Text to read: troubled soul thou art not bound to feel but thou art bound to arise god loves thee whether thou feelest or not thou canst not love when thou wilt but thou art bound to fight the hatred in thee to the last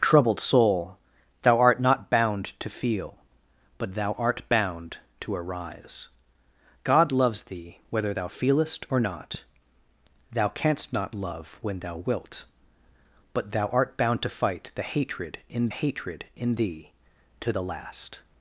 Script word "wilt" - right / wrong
right